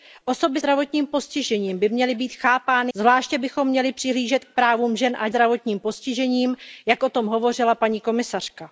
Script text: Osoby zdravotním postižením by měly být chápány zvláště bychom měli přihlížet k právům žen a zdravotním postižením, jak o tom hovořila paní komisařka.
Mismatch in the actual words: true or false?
false